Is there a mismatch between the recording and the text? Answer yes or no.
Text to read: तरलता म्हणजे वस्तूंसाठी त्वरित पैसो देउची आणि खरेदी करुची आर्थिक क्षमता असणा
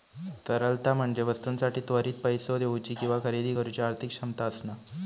yes